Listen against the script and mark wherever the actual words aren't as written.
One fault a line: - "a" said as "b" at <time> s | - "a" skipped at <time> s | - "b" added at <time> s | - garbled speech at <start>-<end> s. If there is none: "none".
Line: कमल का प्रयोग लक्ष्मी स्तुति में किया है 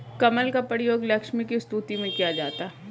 - "की" added at 1.4 s
- "जाता" added at 2.3 s